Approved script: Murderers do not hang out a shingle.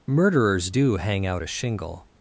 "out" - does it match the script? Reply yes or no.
yes